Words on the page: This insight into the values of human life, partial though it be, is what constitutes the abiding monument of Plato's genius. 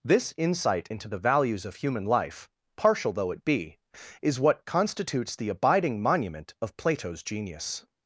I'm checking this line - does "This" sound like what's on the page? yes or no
yes